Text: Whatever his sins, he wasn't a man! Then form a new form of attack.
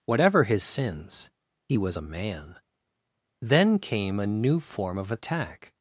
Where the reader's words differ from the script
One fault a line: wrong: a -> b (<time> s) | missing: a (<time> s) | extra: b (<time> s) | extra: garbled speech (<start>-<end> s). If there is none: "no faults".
wrong: wasn't -> was (1.8 s)
wrong: form -> came (3.8 s)